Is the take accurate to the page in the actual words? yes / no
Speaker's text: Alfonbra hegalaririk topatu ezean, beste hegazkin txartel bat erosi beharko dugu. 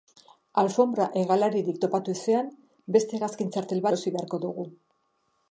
no